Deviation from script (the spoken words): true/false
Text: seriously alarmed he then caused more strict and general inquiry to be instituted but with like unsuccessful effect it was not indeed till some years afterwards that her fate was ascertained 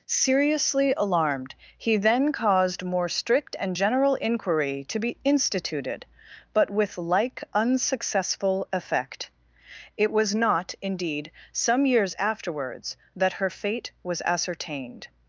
true